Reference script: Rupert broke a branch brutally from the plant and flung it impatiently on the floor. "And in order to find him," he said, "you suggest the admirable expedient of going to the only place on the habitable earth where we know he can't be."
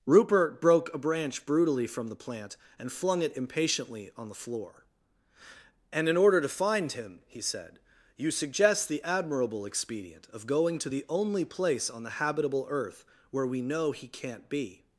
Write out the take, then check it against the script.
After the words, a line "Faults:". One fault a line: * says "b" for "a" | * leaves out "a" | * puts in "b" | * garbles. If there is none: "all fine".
Rupert broke a branch brutally from the plant and flung it impatiently on the floor. "And in order to find him," he said, "you suggest the admirable expedient of going to the only place on the habitable earth where we know he can't be."
Faults:
all fine